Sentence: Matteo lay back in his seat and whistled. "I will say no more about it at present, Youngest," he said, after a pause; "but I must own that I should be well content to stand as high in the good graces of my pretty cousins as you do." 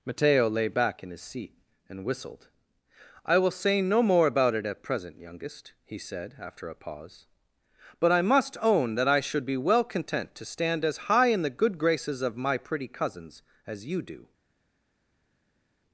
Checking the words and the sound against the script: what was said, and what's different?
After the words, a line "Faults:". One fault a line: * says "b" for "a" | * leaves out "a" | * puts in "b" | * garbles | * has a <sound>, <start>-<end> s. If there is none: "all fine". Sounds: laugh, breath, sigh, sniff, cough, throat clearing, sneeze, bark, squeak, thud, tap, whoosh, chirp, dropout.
Matteo lay back in his seat and whistled. "I will say no more about it at present, Youngest," he said, after a pause; "but I must own that I should be well content to stand as high in the good graces of my pretty cousins as you do."
Faults:
all fine